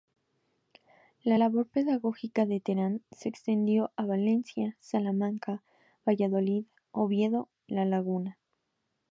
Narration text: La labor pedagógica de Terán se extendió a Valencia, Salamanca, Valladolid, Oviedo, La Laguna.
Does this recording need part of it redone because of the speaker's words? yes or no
no